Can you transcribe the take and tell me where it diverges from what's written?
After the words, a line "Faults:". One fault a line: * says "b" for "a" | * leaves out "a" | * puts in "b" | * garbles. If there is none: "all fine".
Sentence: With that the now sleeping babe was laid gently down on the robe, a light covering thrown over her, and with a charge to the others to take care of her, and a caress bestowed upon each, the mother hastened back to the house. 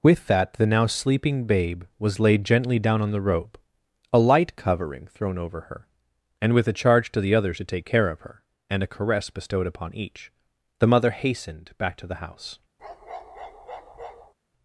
With that the now sleeping babe was laid gently down on the robe, a light covering thrown over her, and with a charge to the others to take care of her, and a caress bestowed upon each, the mother hastened back to the house.
Faults:
all fine